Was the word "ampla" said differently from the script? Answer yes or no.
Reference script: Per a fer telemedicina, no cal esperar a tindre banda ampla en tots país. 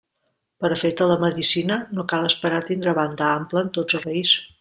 no